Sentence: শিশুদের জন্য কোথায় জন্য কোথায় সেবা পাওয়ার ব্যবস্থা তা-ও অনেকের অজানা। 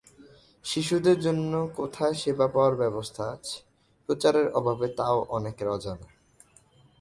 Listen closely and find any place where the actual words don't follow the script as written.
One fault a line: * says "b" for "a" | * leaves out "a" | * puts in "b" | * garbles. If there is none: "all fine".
* leaves out "জন্য কোথায়"
* puts in "আছে প্রচারের অভাবে"